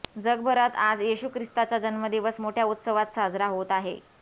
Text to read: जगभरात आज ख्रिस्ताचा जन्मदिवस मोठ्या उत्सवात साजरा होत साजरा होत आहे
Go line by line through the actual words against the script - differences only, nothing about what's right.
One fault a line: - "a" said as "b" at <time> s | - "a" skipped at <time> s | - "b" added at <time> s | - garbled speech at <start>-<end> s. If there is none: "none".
- "येशू" added at 1.0 s
- "साजरा होत" skipped at 3.7 s